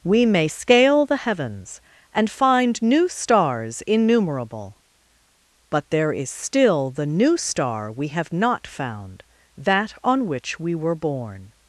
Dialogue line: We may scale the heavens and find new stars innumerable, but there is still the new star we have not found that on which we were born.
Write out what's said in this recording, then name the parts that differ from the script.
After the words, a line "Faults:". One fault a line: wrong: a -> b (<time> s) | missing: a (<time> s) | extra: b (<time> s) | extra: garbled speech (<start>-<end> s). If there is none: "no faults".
We may scale the heavens and find new stars innumerable, but there is still the new star we have not found that on which we were born.
Faults:
no faults